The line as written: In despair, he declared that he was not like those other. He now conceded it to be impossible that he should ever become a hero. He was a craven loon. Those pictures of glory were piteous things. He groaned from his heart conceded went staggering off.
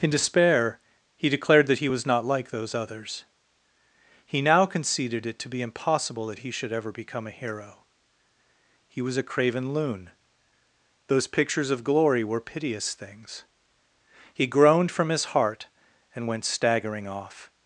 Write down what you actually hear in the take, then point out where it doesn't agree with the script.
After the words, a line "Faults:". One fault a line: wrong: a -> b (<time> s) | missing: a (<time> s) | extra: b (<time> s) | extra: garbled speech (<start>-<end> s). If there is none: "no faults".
In despair, he declared that he was not like those others. He now conceded it to be impossible that he should ever become a hero. He was a craven loon. Those pictures of glory were piteous things. He groaned from his heart and went staggering off.
Faults:
wrong: other -> others (2.7 s)
wrong: conceded -> and (16.1 s)